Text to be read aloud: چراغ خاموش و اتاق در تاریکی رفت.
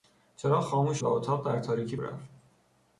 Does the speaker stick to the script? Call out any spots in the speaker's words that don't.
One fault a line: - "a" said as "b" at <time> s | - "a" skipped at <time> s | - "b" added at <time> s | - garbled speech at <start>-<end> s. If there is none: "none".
none